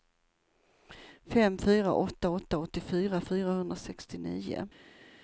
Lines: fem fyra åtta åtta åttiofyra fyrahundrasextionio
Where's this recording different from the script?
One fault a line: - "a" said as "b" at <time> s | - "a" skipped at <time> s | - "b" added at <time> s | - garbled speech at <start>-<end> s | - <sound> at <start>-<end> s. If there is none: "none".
none